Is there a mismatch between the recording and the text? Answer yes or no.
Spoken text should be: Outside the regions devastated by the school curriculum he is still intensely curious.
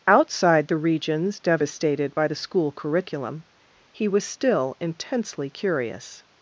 yes